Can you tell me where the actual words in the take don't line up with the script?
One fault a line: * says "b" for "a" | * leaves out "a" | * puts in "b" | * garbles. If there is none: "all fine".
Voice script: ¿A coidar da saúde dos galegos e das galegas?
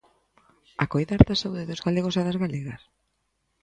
all fine